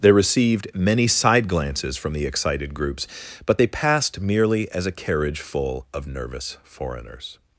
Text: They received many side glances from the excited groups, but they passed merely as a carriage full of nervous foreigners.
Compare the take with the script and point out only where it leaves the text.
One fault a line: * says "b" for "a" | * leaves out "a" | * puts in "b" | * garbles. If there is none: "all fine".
all fine